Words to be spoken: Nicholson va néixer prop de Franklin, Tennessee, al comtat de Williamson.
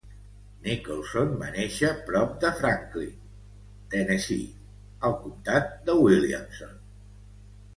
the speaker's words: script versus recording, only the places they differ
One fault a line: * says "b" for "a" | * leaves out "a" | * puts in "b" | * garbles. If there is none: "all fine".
all fine